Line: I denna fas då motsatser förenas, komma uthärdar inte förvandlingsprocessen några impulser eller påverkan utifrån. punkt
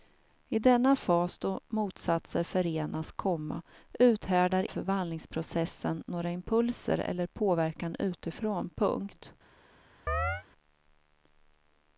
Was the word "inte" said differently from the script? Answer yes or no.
yes